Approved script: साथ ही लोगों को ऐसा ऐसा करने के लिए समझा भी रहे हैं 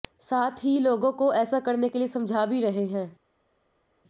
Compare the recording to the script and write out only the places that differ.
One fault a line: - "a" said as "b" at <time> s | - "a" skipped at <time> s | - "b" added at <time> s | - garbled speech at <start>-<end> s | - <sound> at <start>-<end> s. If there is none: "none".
- "ऐसा" skipped at 1.6 s